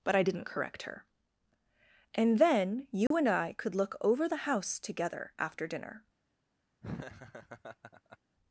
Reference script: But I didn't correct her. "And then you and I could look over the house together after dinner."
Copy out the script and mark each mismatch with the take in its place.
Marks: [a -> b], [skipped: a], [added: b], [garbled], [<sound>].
But I didn't correct her. "And then you [dropout] and I could look over the house together after dinner." [laugh]